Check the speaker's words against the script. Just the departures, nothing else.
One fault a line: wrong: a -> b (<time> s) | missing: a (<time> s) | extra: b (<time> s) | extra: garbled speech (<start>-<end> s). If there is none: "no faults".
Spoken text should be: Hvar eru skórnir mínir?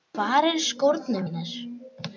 no faults